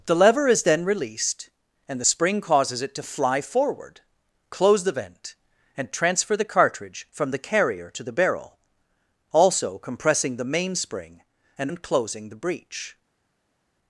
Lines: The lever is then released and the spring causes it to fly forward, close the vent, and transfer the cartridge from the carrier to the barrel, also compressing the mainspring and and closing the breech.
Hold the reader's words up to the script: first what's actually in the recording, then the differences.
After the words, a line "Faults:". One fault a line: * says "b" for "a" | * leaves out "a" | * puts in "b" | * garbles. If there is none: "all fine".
The lever is then released and the spring causes it to fly forward, close the vent, and transfer the cartridge from the carrier to the barrel, also compressing the mainspring and and closing the breech.
Faults:
all fine